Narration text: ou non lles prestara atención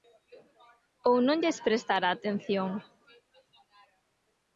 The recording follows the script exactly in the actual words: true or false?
true